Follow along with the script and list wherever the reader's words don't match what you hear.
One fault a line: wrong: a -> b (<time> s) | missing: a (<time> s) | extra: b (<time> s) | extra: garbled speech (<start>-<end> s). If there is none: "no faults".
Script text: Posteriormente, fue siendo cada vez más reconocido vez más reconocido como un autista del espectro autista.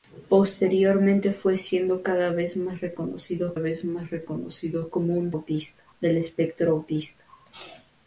no faults